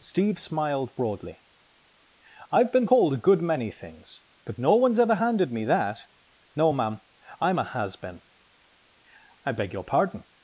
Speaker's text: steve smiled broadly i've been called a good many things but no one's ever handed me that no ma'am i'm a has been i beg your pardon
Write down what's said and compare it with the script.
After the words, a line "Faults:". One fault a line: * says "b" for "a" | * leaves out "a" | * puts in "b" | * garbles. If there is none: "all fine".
steve smiled broadly i've been called a good many things but no one's ever handed me that no ma'am i'm a has been i beg your pardon
Faults:
all fine